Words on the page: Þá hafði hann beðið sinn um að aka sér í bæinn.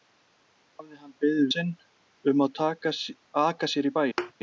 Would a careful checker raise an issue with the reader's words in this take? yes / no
no